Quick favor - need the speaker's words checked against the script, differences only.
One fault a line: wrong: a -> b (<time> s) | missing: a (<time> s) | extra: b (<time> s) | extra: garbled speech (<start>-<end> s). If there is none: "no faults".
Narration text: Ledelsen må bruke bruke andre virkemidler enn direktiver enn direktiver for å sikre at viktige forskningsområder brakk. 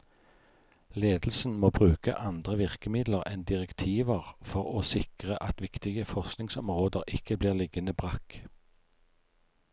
missing: bruke (2.1 s)
missing: enn direktiver (4.3 s)
extra: ikke blir liggende (7.2 s)